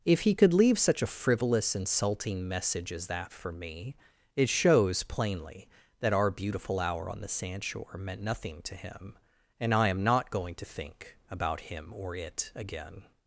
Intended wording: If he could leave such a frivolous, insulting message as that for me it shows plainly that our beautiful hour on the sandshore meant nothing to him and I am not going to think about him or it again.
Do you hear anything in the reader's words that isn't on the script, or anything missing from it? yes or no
no